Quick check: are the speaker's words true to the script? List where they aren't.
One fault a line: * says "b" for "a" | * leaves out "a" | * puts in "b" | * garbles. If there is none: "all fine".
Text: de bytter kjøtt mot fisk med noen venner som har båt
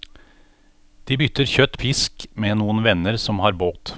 * leaves out "mot"